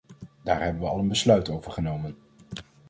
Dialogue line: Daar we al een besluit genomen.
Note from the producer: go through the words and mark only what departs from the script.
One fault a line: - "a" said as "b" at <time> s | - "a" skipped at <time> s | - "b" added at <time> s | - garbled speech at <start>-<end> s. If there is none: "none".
- "hebben" added at 0.6 s
- "over" added at 1.5 s